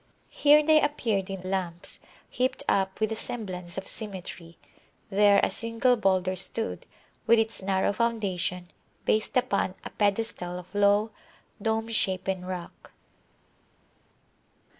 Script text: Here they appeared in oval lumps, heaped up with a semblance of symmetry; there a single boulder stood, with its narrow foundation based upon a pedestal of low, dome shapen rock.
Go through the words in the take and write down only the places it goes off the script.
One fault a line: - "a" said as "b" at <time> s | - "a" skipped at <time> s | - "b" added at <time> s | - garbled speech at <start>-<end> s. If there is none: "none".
- "oval" skipped at 1.4 s